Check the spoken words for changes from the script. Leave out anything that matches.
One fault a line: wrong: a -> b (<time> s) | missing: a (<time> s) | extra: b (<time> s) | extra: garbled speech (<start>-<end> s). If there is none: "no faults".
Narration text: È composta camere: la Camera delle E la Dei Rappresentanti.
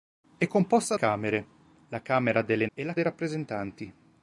no faults